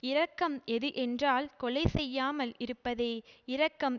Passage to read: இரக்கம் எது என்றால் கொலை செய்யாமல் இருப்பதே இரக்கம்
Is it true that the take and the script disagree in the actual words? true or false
false